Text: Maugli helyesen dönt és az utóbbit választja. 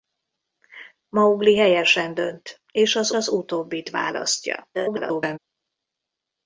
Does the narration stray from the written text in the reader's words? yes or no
yes